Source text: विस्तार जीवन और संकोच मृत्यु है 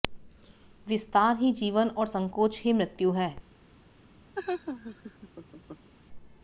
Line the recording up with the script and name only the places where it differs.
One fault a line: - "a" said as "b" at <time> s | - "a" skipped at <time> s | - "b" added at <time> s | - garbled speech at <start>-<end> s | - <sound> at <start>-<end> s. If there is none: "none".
- "ही" added at 1.4 s
- "ही" added at 2.6 s
- laugh at 4.3-5.9 s